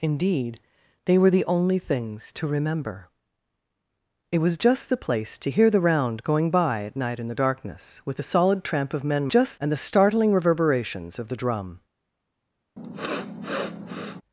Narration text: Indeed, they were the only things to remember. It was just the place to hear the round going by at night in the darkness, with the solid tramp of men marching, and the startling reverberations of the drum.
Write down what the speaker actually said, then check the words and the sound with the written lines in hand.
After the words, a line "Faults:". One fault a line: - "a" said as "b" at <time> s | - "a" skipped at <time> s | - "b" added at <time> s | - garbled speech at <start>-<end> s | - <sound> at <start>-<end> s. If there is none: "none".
Indeed, they were the only things to remember. It was just the place to hear the round going by at night in the darkness, with the solid tramp of men just, and the startling reverberations of the drum.
Faults:
- "marching" said as "just" at 9.3 s
- sniff at 12.8-14.2 s